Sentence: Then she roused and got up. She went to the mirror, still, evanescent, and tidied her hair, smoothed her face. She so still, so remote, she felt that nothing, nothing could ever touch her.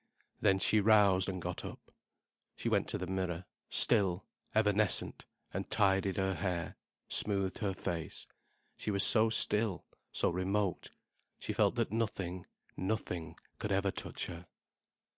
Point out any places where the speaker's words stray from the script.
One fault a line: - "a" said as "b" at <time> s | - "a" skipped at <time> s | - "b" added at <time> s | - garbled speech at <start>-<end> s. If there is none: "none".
- "was" added at 8.9 s